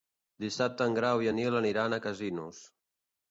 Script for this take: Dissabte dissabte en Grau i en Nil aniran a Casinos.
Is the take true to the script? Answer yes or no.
no